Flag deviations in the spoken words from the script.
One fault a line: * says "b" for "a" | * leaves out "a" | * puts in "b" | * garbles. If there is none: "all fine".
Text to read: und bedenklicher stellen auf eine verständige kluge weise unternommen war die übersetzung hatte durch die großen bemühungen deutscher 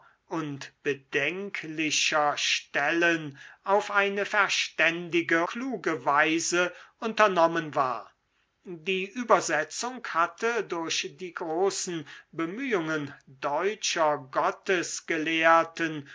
all fine